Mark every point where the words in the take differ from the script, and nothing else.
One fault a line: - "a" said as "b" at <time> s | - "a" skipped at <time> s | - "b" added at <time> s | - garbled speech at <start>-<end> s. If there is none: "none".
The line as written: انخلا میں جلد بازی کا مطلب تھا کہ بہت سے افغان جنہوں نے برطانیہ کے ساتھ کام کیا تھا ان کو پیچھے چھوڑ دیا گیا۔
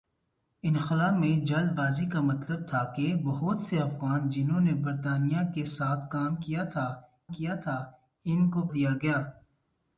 - "کیا تھا" added at 7.3 s
- "پیچھے چھوڑ" skipped at 8.7 s